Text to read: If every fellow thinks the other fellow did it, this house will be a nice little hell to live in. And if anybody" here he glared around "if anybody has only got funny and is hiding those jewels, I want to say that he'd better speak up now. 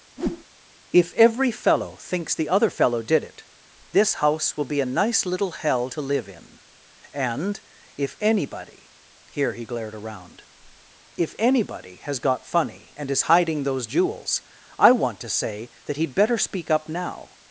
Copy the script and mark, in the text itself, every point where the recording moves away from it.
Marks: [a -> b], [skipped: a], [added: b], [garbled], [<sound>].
[whoosh] If every fellow thinks the other fellow did it, this house will be a nice little hell to live in. And if anybody" here he glared around "if anybody has [skipped: only] got funny and is hiding those jewels, I want to say that he'd better speak up now.